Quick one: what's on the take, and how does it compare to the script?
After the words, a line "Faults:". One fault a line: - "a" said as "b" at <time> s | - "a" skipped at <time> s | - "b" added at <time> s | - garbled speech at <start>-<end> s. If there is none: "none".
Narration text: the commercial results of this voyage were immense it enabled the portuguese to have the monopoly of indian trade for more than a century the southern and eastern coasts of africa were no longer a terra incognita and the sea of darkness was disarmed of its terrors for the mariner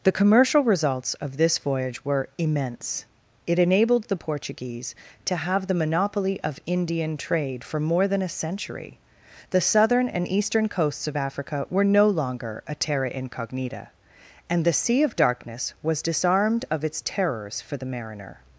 the commercial results of this voyage were immense it enabled the portuguese to have the monopoly of indian trade for more than a century the southern and eastern coasts of africa were no longer a terra incognita and the sea of darkness was disarmed of its terrors for the mariner
Faults:
none